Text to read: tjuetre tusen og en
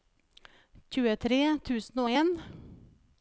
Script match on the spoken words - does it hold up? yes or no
yes